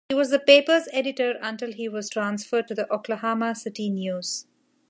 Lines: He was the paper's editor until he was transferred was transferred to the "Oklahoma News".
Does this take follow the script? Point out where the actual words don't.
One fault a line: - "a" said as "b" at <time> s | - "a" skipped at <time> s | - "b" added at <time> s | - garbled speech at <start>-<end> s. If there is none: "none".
- "was transferred" skipped at 2.7 s
- "City" added at 3.6 s